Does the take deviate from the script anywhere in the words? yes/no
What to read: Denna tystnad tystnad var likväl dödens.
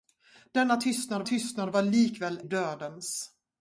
no